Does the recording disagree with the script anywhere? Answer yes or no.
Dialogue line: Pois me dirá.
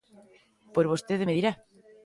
yes